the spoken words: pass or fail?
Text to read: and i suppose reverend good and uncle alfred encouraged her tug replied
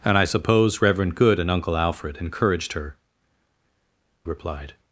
fail